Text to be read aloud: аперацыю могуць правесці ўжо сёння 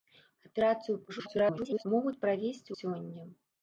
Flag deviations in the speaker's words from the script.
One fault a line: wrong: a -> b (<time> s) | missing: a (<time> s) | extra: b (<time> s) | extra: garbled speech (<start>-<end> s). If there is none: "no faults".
extra: garbled speech (1.1-1.9 s)
missing: ўжо (2.7 s)